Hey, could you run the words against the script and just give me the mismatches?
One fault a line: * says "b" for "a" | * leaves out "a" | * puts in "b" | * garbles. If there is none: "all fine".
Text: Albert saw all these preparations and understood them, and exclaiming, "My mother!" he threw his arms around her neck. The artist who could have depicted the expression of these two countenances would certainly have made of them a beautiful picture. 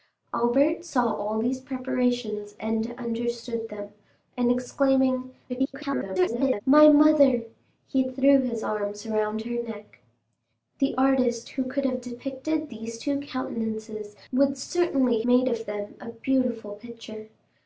* garbles
* leaves out "the expression of"
* leaves out "have"